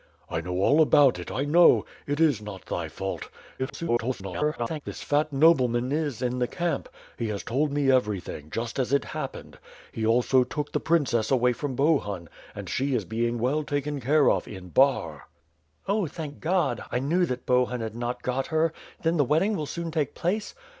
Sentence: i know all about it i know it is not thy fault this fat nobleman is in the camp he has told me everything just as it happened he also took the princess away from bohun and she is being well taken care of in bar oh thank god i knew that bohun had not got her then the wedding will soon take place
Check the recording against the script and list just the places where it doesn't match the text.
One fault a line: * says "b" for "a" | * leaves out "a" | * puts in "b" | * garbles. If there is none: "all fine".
* garbles